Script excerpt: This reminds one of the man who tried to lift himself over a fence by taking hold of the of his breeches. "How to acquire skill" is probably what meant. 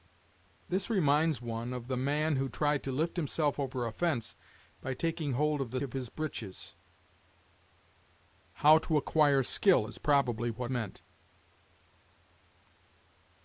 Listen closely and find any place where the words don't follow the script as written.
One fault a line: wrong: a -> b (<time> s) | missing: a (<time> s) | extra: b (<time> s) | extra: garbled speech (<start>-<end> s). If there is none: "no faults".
no faults